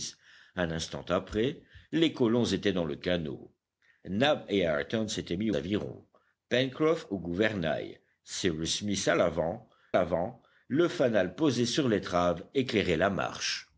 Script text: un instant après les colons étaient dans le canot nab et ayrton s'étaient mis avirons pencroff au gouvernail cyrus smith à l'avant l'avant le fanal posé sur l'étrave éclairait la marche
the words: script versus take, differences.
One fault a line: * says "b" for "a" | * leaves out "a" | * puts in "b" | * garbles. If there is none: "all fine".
all fine